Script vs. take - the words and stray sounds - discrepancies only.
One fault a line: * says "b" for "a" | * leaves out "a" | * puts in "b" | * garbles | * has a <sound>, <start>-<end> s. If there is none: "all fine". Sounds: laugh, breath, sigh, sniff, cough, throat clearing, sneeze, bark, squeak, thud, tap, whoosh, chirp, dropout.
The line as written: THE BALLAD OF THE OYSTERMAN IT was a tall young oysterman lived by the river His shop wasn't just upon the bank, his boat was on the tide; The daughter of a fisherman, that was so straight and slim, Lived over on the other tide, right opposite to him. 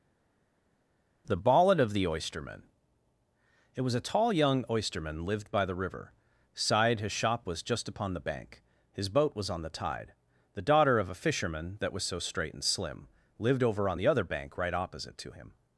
* puts in "side"
* says "was" for "wasn't"
* says "bank" for "tide"